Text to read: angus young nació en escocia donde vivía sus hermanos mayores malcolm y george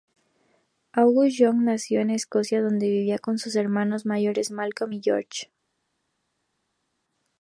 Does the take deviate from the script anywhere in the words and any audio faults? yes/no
yes